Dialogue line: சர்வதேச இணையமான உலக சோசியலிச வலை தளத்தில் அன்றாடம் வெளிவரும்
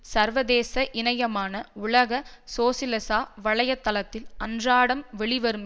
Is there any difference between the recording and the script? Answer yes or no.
no